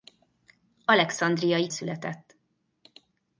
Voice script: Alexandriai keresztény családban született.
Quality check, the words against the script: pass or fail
fail